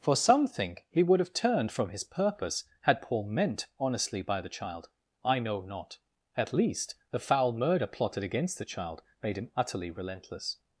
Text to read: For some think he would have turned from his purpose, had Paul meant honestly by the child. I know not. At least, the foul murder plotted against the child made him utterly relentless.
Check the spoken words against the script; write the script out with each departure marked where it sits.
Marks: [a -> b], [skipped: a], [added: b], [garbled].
For some think he would have turned from his purpose, had Paul meant honestly by the child. I know not. At least, the foul murder plotted against the child made him utterly relentless.